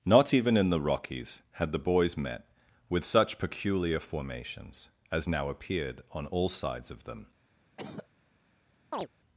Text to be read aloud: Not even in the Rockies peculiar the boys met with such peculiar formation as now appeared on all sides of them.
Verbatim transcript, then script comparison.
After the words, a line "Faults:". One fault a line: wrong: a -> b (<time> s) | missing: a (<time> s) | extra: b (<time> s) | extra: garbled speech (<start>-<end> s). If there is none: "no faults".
Not even in the Rockies had the boys met with such peculiar formations as now appeared on all sides of them.
Faults:
wrong: peculiar -> had (1.5 s)
wrong: formation -> formations (4.0 s)